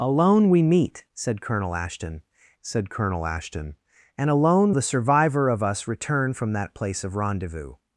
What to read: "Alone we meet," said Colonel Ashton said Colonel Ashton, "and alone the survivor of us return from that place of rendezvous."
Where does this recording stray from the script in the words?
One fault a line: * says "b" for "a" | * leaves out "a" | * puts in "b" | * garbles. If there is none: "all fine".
all fine